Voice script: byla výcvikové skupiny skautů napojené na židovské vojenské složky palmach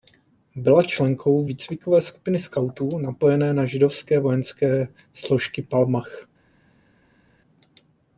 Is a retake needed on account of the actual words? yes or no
yes